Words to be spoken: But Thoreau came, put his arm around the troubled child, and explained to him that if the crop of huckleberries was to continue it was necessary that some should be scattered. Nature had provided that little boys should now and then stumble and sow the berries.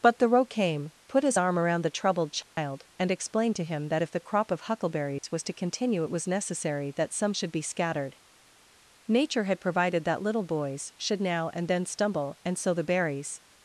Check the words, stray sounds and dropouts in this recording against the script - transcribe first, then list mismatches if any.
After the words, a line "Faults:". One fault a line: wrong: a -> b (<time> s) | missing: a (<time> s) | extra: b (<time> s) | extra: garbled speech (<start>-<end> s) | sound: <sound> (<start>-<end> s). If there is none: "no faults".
But Thoreau came, put his arm around the troubled child, and explained to him that if the crop of huckleberries was to continue it was necessary that some should be scattered. Nature had provided that little boys should now and then stumble and sow the berries.
Faults:
sound: dropout (2.4-2.6 s)
sound: dropout (5.2-5.2 s)